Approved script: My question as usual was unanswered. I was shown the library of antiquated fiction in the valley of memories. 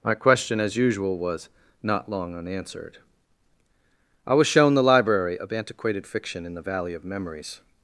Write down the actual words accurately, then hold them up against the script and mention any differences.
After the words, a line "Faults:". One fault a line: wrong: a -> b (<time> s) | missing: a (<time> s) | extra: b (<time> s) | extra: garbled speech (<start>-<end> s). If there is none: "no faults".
My question as usual was not long unanswered. I was shown the library of antiquated fiction in the valley of memories.
Faults:
extra: not long (1.8 s)